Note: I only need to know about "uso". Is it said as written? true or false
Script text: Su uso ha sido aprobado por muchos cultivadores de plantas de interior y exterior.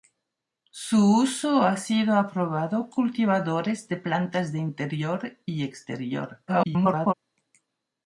true